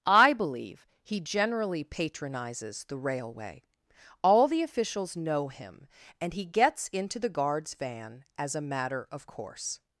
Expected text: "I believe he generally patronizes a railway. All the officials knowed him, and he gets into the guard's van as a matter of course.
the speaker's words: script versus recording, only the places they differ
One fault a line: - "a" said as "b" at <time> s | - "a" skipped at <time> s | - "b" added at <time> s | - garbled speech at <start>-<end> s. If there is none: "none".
- "a" said as "the" at 2.9 s
- "knowed" said as "know" at 5.2 s